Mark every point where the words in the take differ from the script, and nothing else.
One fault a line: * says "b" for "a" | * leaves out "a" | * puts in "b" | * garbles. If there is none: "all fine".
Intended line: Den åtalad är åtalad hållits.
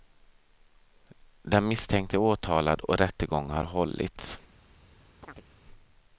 * says "misstänkte" for "åtalad"
* puts in "och rättegång har"